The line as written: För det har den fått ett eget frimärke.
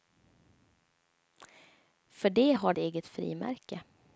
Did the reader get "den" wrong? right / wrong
wrong